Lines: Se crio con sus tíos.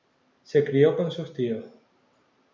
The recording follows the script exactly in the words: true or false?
true